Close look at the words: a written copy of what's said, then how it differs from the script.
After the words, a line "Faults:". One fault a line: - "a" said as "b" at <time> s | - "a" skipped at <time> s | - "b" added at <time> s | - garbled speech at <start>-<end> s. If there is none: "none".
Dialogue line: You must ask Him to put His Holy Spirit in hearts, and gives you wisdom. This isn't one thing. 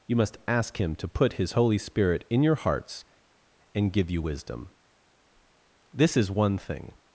You must ask Him to put His Holy Spirit in your hearts, and give you wisdom. This is one thing.
Faults:
- "your" added at 2.4 s
- "gives" said as "give" at 3.9 s
- "isn't" said as "is" at 6.2 s